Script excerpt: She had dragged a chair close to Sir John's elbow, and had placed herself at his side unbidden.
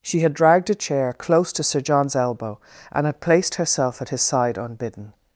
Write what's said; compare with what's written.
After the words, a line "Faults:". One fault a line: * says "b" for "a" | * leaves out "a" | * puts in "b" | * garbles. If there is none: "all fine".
She had dragged a chair close to Sir John's elbow, and had placed herself at his side unbidden.
Faults:
all fine